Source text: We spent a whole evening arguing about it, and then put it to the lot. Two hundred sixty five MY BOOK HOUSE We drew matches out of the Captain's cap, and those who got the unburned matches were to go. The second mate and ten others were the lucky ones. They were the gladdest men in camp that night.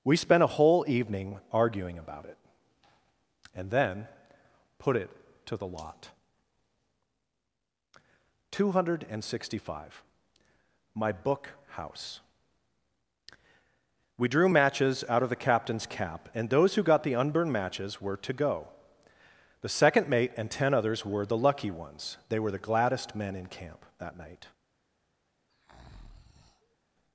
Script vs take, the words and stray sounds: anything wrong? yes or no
yes